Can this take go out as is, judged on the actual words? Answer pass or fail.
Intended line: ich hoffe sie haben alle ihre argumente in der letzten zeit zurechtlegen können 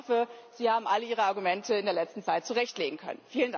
pass